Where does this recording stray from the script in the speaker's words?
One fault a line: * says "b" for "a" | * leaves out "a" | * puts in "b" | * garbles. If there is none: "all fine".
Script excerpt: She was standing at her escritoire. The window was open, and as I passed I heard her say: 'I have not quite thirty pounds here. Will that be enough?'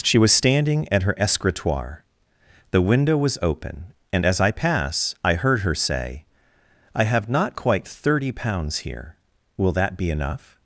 * says "pass" for "passed"